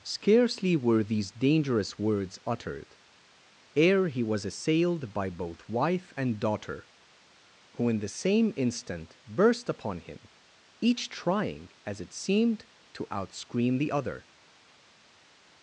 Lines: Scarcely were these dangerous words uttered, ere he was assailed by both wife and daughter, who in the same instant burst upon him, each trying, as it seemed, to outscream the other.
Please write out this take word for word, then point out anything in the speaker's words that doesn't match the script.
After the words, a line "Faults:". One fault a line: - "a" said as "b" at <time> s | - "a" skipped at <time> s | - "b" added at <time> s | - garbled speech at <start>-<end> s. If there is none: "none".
Scarcely were these dangerous words uttered, ere he was assailed by both wife and daughter, who in the same instant burst upon him, each trying, as it seemed, to outscream the other.
Faults:
none